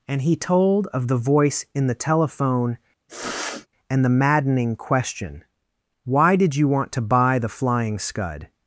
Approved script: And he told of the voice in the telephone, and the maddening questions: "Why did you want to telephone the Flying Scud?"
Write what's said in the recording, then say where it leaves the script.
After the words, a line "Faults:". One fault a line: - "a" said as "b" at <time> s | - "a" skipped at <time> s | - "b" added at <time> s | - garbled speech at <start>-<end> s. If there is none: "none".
And he told of the voice in the telephone, and the maddening question: "Why did you want to buy the Flying Scud?"
Faults:
- "questions" said as "question" at 4.8 s
- "telephone" said as "buy" at 7.0 s